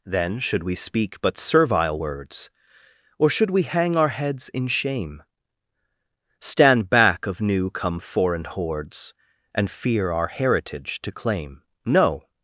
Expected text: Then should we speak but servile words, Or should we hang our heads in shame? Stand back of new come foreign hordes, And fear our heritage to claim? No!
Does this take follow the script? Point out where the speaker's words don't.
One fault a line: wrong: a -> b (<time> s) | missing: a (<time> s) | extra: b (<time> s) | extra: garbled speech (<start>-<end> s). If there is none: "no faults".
no faults